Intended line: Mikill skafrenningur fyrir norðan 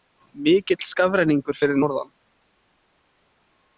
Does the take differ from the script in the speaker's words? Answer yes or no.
no